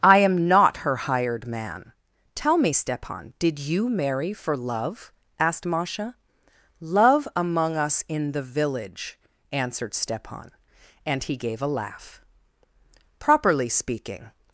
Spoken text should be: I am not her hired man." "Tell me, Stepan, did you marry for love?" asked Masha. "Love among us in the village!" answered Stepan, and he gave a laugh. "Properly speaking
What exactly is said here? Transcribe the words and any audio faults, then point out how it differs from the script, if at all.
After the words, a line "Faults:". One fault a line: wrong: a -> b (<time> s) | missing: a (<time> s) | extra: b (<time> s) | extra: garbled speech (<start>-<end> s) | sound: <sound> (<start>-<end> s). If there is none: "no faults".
I am not her hired man." "Tell me, Stepan, did you marry for love?" asked Masha. "Love among us in the village!" answered Stepan, and he gave a laugh. "Properly speaking
Faults:
no faults